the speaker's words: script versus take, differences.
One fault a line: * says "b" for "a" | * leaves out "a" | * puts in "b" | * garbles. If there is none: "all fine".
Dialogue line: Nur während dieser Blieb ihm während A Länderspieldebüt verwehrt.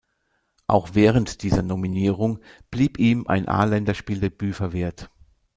* says "Auch" for "Nur"
* puts in "Nominierung"
* says "ein" for "während"